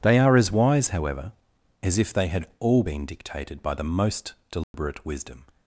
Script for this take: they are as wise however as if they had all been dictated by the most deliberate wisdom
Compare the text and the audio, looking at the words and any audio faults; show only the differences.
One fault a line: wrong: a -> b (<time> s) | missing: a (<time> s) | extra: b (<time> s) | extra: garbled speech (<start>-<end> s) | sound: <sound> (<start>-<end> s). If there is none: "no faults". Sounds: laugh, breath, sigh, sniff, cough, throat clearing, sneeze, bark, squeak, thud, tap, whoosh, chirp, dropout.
sound: dropout (4.6-4.7 s)